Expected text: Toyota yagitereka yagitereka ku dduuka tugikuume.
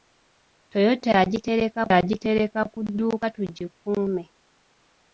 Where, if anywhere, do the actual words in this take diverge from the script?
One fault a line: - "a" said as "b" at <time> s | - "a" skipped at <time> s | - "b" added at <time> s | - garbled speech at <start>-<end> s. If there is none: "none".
none